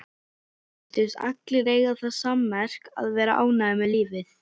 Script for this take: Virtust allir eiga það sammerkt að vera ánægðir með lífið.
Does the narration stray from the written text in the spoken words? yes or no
no